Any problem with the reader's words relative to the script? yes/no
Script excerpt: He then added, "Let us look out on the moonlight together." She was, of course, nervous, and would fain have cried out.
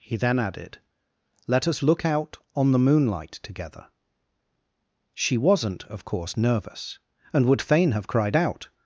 yes